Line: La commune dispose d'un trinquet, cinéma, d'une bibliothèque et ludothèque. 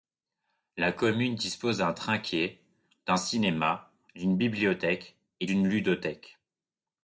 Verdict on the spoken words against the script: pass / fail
fail